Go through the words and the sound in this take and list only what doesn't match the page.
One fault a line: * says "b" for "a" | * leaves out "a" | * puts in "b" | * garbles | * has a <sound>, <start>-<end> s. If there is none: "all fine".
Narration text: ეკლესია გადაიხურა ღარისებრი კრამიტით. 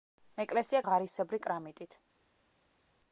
* leaves out "გადაიხურა"